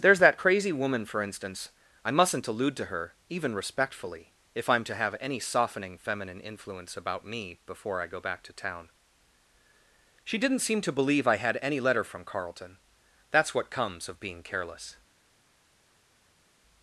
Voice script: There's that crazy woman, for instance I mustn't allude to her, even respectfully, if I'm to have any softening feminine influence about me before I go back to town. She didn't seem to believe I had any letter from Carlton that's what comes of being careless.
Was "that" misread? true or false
false